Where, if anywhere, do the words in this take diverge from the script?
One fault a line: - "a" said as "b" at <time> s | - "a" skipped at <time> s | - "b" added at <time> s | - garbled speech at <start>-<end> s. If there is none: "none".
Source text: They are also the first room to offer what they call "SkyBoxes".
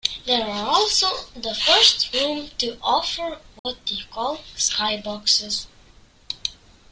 none